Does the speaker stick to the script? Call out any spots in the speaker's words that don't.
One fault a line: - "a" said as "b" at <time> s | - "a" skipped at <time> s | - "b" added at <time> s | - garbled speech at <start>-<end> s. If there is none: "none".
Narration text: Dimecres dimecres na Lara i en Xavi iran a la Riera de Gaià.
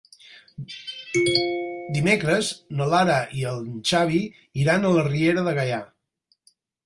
- "dimecres" skipped at 2.5 s